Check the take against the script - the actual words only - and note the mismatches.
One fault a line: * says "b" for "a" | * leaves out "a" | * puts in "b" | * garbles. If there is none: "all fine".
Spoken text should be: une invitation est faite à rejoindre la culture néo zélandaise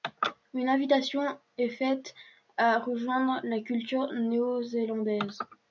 all fine